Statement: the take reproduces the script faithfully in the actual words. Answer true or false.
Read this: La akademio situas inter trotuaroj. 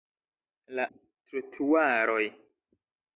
false